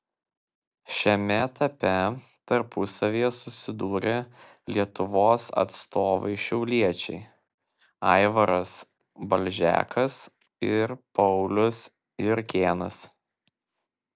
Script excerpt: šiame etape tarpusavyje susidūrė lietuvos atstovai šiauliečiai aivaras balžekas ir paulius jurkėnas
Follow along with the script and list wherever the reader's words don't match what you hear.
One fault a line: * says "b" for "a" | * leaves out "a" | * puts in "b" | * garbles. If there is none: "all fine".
all fine